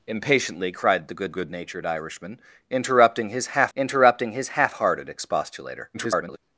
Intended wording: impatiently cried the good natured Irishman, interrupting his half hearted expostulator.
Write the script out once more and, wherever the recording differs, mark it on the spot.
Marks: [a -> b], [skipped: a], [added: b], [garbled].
impatiently cried the good [added: good] natured Irishman, interrupting his half [added: interrupting his half] hearted expostulator. [garbled]